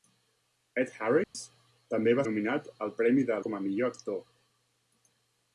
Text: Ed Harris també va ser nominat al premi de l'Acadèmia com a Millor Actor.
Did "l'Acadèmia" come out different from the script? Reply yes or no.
yes